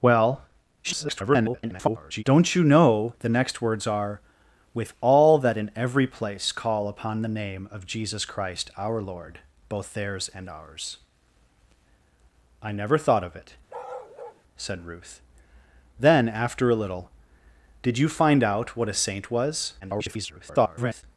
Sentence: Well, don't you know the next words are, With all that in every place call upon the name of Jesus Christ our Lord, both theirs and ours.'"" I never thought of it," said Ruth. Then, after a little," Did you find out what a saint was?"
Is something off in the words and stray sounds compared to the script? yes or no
yes